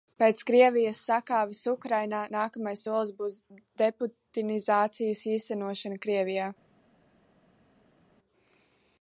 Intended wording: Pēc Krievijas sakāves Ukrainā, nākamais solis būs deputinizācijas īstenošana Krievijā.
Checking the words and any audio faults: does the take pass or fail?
pass